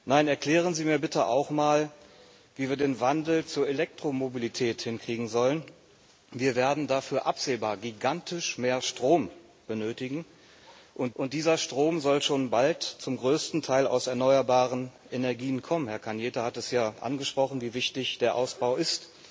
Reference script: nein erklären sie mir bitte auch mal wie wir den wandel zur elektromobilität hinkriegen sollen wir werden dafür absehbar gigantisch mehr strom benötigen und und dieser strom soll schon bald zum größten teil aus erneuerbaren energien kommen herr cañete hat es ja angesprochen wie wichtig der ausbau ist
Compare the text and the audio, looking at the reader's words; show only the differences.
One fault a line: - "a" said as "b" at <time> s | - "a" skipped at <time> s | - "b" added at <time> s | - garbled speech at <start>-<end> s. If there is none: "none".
none